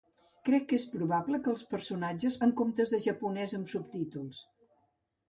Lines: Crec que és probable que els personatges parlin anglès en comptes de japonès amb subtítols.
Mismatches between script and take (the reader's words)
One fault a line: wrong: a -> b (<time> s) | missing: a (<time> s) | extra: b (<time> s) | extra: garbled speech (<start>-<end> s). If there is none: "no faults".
missing: parlin anglès (2.4 s)